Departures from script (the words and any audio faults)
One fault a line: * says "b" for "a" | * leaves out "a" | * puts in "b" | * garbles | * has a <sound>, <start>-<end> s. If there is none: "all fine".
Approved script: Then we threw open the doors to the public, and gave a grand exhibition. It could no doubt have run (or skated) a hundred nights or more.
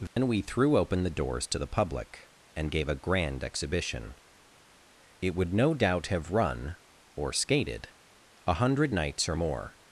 * has a dropout, 0.1-0.2 s
* says "would" for "could"